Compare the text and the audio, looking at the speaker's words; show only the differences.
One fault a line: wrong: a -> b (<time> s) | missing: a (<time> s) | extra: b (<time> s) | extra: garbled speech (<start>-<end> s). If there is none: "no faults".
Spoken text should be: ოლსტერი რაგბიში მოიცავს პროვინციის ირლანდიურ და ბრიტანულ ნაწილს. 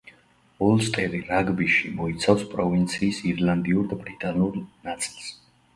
no faults